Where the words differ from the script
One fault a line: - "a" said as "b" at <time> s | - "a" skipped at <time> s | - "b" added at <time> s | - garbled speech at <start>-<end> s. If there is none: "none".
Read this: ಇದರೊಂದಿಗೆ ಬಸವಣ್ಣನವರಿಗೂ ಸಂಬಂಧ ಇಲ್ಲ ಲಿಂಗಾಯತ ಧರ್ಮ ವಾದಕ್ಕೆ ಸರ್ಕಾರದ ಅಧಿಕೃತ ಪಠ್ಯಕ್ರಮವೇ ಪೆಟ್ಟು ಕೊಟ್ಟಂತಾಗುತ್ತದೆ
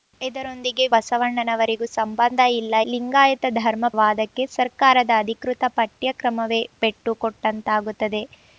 none